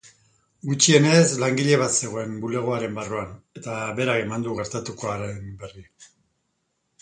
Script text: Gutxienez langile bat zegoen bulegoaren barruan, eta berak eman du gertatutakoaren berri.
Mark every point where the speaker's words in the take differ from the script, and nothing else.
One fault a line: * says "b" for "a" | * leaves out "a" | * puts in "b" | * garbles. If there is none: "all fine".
all fine